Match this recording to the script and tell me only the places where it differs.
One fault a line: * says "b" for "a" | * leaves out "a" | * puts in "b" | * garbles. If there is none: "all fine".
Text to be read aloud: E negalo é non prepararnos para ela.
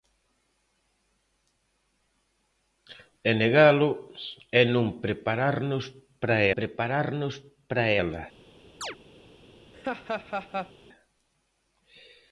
* puts in "prepararnos para"